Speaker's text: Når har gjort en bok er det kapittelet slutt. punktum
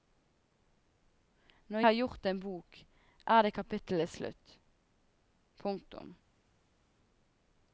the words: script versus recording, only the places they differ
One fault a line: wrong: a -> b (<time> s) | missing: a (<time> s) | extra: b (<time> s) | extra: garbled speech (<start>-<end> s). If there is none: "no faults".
no faults